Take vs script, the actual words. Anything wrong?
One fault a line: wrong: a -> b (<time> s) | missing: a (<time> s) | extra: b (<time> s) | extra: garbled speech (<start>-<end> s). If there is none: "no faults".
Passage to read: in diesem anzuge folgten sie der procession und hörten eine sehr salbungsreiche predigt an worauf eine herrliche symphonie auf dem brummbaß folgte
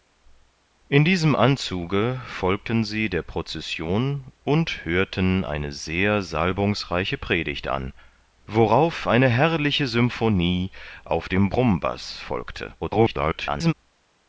extra: garbled speech (12.8-13.7 s)